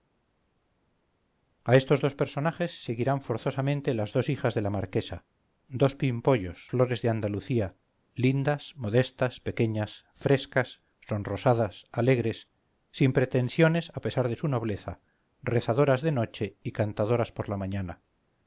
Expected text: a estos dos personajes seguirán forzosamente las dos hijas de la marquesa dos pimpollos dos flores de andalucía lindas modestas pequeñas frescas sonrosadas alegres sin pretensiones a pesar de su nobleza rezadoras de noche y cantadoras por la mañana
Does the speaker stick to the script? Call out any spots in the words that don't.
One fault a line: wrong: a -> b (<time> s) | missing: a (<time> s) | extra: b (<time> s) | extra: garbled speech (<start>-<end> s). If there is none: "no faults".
missing: dos (6.7 s)